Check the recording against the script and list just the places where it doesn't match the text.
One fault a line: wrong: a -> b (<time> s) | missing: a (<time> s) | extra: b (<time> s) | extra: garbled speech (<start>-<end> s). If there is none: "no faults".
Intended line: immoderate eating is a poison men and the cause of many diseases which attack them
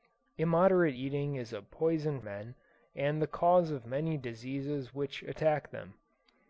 no faults